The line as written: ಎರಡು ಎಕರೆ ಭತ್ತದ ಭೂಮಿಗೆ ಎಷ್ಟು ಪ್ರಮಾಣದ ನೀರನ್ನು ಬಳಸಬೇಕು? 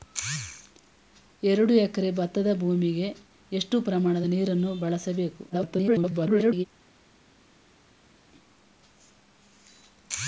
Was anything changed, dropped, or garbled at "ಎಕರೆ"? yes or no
no